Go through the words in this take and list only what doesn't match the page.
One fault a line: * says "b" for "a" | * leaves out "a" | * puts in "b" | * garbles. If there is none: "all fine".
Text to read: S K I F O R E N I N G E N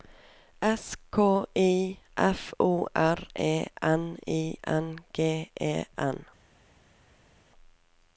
all fine